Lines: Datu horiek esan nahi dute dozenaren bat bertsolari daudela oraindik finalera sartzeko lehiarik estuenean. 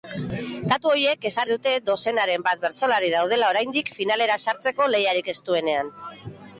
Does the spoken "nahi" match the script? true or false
false